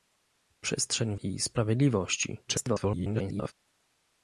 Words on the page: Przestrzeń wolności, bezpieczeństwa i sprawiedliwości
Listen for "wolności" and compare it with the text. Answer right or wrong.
wrong